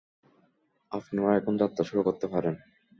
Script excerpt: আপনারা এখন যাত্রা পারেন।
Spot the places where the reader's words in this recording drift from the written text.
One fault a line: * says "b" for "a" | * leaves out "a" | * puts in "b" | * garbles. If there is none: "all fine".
* puts in "শুরু করতে"